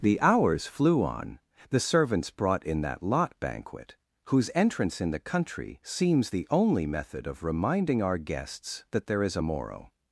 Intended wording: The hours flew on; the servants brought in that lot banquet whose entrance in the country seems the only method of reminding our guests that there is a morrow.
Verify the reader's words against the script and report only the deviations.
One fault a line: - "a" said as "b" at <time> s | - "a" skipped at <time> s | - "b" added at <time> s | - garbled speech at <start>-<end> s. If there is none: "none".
none